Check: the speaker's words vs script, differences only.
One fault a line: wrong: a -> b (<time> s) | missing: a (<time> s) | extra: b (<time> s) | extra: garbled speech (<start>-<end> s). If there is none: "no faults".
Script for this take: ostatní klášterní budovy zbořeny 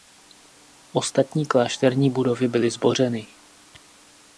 extra: byly (2.5 s)